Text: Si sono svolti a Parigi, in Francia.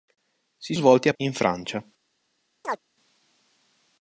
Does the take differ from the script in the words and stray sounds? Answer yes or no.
yes